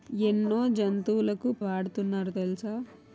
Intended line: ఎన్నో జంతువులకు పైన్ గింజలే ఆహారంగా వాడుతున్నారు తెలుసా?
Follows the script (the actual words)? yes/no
no